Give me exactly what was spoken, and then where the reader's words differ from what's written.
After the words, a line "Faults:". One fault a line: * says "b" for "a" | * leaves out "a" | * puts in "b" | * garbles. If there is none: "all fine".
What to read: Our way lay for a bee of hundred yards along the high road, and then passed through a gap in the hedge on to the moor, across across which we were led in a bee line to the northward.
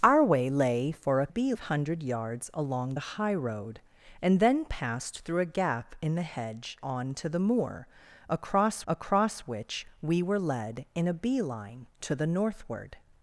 Our way lay for a bee of hundred yards along the high road, and then passed through a gap in the hedge on to the moor, across across which we were led in a bee line to the northward.
Faults:
all fine